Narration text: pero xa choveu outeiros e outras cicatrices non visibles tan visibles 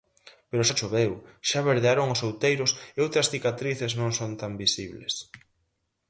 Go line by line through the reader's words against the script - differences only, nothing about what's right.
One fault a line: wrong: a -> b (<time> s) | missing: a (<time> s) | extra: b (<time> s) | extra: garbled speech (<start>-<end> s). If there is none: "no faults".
extra: xa verdearon os (1.5 s)
wrong: visibles -> son (4.2 s)